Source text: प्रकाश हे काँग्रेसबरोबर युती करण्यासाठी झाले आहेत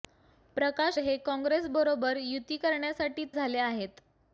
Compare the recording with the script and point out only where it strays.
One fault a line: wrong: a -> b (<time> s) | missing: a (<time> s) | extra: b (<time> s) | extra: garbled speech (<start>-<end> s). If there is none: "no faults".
no faults